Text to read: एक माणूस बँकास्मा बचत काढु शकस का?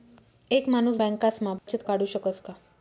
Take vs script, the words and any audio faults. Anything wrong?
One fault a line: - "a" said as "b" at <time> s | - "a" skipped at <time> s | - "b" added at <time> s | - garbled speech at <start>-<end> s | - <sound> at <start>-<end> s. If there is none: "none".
- dropout at 1.6-1.7 s